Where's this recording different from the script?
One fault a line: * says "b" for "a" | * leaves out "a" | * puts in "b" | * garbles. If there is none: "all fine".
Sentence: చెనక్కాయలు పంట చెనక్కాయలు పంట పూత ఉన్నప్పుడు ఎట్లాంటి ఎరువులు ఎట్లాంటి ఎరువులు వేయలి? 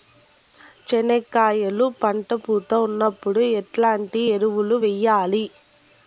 * leaves out "చెనక్కాయలు పంట"
* leaves out "ఎట్లాంటి ఎరువులు"